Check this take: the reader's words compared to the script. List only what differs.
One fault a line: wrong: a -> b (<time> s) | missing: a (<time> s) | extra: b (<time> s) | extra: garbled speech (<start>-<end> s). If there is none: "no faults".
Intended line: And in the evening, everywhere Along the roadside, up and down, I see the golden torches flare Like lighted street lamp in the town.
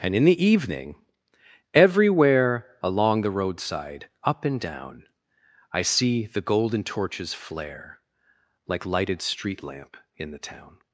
no faults